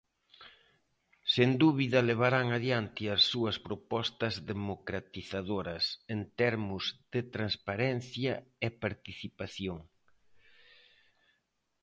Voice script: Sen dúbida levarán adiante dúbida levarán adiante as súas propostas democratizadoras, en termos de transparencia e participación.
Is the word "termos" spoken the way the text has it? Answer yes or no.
yes